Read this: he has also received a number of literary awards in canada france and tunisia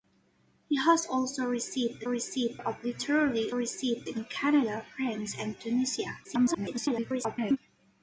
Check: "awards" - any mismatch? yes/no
yes